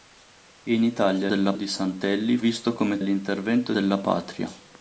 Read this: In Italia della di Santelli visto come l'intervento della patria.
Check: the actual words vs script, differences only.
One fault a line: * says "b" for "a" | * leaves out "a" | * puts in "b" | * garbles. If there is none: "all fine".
all fine